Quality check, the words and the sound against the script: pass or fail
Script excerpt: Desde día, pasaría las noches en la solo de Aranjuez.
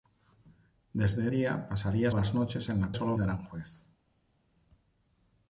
pass